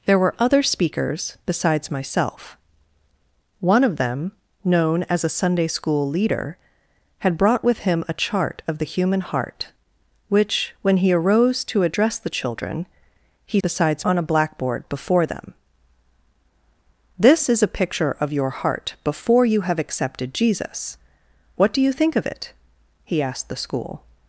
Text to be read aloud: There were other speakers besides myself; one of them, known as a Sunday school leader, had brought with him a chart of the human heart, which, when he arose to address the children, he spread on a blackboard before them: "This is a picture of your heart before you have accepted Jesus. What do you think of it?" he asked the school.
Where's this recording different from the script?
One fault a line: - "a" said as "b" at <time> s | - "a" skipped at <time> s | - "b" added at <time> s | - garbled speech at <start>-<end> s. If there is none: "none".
- "spread" said as "besides" at 13.6 s